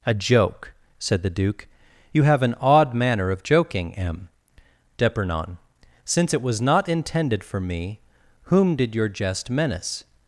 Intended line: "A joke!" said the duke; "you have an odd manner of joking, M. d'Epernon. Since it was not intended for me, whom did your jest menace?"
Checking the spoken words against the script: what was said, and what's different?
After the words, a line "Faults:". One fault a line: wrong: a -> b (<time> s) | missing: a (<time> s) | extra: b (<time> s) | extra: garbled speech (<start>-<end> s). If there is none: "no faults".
"A joke!" said the duke; "you have an odd manner of joking, M. d'Epernon. Since it was not intended for me, whom did your jest menace?"
Faults:
no faults